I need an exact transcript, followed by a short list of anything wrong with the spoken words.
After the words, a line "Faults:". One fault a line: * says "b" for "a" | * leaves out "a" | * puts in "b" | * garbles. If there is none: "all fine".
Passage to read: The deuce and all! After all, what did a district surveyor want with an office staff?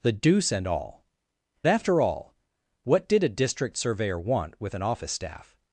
The deuce and all! After all, what did a district surveyor want with an office staff?
Faults:
all fine